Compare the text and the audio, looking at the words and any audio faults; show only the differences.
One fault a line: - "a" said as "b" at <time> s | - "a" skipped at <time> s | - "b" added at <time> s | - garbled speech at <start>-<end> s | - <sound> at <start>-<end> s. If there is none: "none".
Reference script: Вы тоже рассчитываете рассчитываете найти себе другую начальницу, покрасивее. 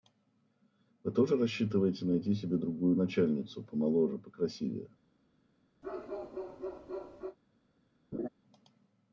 - "рассчитываете" skipped at 2.0 s
- "помоложе" added at 3.6 s
- bark at 5.8-7.4 s
- laugh at 8.1-8.3 s